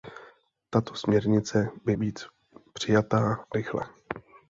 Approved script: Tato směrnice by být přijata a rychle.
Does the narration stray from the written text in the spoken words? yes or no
no